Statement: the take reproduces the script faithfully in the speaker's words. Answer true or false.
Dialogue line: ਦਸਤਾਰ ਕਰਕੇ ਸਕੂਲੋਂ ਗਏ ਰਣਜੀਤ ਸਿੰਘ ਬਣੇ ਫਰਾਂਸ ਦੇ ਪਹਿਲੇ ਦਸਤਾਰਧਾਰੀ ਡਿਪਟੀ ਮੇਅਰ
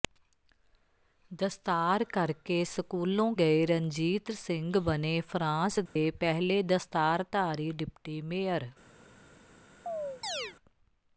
true